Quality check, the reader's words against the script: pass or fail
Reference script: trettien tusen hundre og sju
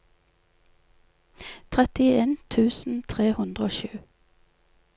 fail